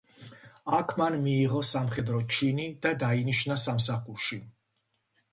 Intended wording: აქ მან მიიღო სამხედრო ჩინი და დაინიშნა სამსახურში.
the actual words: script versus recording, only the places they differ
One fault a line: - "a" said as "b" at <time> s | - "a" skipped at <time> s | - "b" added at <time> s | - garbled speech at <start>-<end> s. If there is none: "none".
none